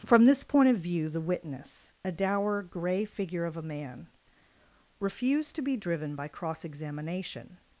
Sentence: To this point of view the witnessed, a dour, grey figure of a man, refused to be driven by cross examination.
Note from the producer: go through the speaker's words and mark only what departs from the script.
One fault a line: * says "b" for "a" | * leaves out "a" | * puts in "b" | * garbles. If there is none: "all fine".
* says "From" for "To"
* says "witness" for "witnessed"